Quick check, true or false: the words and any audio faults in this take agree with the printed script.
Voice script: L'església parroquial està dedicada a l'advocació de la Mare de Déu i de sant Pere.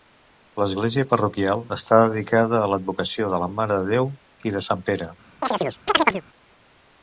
false